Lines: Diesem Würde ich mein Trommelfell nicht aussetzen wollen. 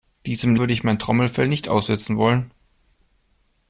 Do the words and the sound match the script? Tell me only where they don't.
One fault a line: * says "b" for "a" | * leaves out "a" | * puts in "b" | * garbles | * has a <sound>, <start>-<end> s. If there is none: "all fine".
all fine